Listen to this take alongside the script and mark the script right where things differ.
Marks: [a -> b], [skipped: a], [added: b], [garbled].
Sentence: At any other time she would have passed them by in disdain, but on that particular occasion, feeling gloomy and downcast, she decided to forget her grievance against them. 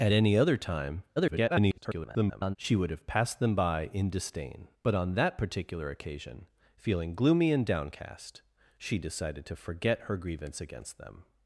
At any other time [garbled] she would have passed them by in disdain, but on that particular occasion, feeling gloomy and downcast, she decided to forget her grievance against them.